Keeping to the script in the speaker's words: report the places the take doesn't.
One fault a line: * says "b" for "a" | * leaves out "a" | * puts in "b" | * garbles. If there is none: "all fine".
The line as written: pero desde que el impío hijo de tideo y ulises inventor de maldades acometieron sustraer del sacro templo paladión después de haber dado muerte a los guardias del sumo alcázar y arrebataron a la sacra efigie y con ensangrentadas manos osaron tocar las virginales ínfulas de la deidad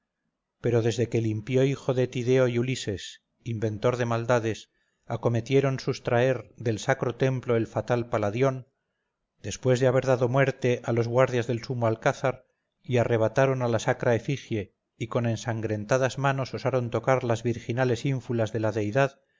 * puts in "el fatal"